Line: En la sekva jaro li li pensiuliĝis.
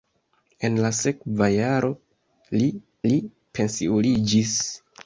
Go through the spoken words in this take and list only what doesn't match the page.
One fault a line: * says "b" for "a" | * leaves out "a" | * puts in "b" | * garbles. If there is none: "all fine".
all fine